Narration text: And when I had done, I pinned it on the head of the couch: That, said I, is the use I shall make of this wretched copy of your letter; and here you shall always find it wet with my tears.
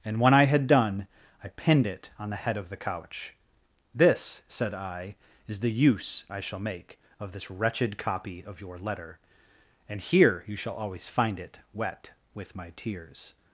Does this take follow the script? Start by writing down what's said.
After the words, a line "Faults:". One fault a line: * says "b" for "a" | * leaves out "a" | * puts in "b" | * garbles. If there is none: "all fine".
And when I had done, I pinned it on the head of the couch: This, said I, is the use I shall make of this wretched copy of your letter; and here you shall always find it wet with my tears.
Faults:
* says "This" for "That"